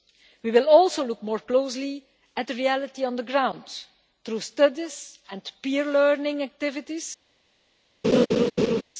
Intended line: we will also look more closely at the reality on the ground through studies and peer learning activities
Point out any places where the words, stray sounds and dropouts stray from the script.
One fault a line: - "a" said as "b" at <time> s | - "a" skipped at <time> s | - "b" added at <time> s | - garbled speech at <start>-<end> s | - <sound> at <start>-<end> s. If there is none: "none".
- laugh at 8.0-8.8 s